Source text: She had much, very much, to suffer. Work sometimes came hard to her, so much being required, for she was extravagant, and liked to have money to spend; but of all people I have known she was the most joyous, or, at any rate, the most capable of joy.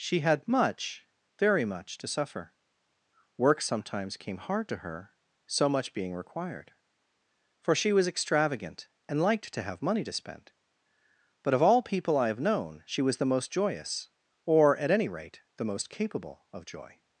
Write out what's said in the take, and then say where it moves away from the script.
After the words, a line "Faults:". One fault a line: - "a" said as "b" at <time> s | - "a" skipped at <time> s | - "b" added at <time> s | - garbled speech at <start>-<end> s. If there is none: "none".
She had much, very much, to suffer. Work sometimes came hard to her, so much being required, for she was extravagant, and liked to have money to spend; but of all people I have known she was the most joyous, or, at any rate, the most capable of joy.
Faults:
none